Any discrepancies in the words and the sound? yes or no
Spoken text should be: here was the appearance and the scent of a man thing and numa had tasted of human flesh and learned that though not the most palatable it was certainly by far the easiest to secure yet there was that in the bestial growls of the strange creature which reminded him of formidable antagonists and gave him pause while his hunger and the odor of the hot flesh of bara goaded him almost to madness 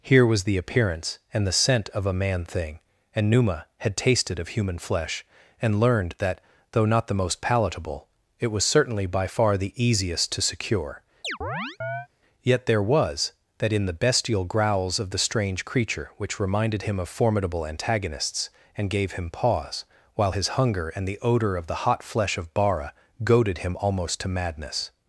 yes